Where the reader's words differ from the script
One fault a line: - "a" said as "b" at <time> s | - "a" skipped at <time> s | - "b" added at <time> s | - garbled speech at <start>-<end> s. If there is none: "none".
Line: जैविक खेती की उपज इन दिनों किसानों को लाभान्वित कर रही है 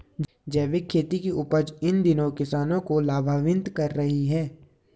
none